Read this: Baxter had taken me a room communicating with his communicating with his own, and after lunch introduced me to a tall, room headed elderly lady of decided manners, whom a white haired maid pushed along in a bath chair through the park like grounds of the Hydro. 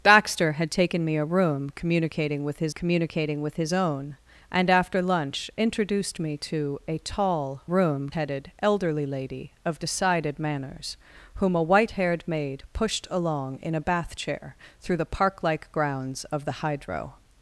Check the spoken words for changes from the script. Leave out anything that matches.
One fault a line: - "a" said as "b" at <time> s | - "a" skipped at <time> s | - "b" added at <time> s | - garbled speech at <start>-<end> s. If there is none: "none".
none